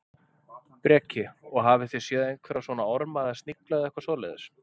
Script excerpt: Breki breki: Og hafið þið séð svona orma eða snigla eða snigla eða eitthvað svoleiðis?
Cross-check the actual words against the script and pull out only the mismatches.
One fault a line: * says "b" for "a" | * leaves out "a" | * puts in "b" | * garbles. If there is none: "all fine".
* leaves out "breki"
* puts in "einhverja"
* leaves out "snigla eða"